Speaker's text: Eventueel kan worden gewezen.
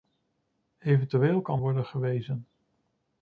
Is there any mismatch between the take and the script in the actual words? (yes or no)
no